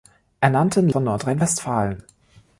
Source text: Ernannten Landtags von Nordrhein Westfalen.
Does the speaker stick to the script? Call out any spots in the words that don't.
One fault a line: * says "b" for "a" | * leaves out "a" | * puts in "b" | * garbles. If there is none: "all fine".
* leaves out "Landtags"